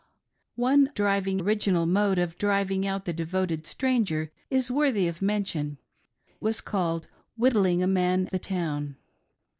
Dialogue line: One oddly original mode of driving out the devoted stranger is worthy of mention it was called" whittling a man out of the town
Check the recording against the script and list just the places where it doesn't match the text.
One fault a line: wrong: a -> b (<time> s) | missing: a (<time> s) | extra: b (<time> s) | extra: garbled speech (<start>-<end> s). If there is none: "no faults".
wrong: oddly -> driving (0.9 s)
missing: it (5.8 s)
missing: out of (8.3 s)